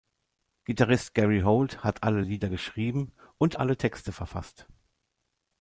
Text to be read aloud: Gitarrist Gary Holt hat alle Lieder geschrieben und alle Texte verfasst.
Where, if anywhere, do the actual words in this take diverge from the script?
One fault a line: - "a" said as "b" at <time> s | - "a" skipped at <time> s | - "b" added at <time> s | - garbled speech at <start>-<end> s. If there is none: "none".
none